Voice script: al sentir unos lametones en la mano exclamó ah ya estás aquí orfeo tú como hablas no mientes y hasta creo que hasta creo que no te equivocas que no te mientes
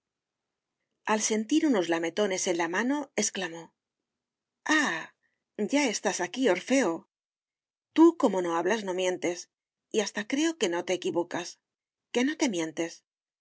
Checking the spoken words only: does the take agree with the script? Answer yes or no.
no